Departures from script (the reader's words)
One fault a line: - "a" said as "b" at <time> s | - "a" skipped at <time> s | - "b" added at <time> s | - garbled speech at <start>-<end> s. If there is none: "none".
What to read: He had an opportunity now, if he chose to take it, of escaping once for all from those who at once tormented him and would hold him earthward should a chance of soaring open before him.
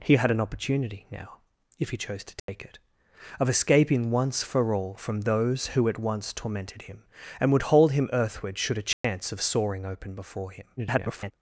- garbled speech at 10.8-11.3 s